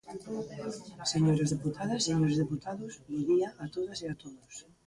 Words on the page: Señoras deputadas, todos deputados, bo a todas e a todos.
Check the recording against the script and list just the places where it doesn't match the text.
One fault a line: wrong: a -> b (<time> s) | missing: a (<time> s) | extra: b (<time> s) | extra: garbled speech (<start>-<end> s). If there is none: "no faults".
wrong: todos -> señores (2.1 s)
extra: día (3.3 s)